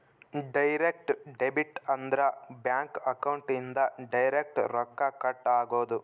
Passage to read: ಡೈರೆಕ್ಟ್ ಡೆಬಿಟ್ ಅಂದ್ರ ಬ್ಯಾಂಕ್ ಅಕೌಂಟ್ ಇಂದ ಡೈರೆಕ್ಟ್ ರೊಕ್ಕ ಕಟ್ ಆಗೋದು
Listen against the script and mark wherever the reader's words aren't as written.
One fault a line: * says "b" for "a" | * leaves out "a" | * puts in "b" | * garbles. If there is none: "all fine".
all fine